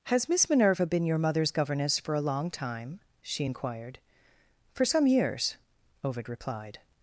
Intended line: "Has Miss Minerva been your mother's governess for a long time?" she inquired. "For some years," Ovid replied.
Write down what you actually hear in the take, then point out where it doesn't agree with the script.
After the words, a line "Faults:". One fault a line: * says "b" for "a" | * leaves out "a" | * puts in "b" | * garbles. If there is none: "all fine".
"Has Miss Minerva been your mother's governess for a long time?" she inquired. "For some years," Ovid replied.
Faults:
all fine